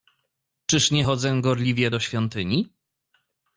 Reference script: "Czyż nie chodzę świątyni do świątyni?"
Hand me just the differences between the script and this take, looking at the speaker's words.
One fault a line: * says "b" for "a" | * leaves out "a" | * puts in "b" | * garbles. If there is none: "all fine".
* says "gorliwie" for "świątyni"